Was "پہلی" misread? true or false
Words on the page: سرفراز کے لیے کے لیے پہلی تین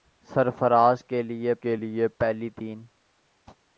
false